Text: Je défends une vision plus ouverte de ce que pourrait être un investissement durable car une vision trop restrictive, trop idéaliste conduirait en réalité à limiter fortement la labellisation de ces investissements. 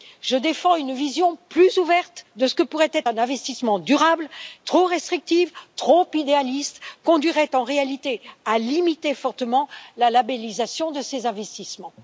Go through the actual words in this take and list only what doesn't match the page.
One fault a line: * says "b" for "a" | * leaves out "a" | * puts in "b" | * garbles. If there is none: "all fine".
* leaves out "car une vision"